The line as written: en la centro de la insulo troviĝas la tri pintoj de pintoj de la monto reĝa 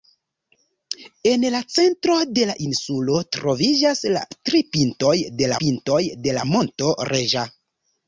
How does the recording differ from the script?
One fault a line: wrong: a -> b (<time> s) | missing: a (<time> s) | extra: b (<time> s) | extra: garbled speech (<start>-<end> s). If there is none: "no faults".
no faults